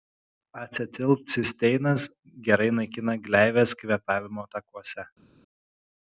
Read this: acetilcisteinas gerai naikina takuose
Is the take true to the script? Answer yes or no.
no